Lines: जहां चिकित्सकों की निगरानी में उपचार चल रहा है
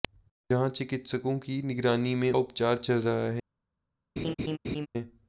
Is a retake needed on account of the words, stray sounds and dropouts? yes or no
yes